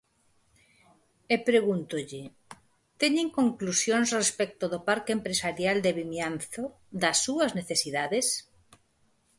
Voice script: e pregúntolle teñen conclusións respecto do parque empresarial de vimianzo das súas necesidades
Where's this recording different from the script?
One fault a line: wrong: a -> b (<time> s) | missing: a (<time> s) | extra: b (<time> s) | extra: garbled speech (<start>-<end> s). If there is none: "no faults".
no faults